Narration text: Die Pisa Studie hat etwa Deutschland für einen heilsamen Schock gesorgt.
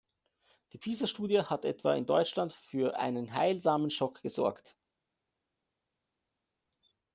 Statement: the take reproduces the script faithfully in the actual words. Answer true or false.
false